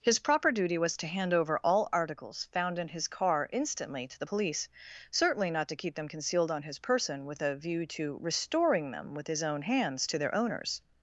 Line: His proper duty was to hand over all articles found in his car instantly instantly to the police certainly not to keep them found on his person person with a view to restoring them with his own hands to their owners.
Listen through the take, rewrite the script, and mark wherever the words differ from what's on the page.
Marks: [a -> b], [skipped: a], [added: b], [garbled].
His proper duty was to hand over all articles found in his car instantly [skipped: instantly] to the police certainly not to keep them [found -> concealed] on his person [skipped: person] with a view to restoring them with his own hands to their owners.